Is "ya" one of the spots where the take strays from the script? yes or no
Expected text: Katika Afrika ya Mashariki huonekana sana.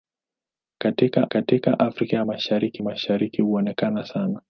no